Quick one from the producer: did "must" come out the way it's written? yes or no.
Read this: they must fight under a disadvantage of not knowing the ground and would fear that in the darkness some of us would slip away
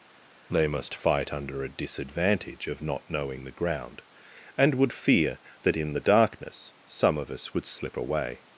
yes